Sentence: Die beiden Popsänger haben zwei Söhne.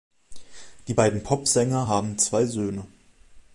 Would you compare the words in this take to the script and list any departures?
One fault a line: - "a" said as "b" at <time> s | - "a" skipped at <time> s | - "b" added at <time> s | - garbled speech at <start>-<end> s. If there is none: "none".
none